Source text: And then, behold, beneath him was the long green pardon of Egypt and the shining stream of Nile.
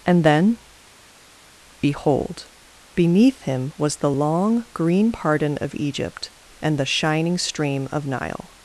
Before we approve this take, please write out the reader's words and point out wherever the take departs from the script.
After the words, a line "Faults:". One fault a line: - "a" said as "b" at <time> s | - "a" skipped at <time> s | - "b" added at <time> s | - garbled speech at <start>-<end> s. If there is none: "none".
And then, behold, beneath him was the long green pardon of Egypt and the shining stream of Nile.
Faults:
none